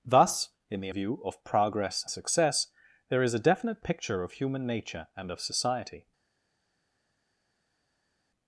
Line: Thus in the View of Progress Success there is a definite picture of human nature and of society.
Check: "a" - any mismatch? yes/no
no